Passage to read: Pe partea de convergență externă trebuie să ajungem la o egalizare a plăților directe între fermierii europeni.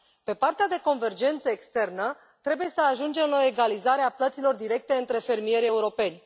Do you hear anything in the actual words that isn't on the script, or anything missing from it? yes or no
no